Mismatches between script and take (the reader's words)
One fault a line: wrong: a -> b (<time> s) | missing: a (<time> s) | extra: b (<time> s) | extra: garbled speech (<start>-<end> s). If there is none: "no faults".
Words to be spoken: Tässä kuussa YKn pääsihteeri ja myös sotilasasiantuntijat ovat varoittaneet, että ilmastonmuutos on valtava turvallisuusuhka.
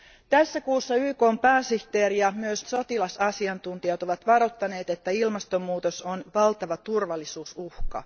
no faults